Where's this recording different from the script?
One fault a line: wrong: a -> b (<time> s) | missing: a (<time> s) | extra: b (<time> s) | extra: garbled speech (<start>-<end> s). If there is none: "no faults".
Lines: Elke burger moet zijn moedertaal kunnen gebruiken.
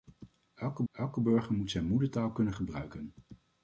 extra: elke (0.9 s)